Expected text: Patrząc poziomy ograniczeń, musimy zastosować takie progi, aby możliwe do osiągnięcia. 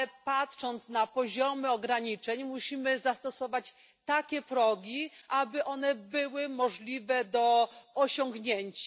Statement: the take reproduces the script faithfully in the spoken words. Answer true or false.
false